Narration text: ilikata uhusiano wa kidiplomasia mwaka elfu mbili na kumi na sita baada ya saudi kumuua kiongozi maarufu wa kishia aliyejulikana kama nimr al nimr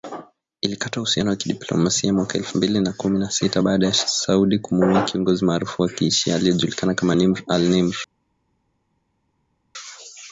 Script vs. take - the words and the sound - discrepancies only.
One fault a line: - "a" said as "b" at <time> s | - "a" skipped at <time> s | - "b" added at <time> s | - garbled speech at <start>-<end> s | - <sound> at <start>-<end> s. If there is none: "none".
none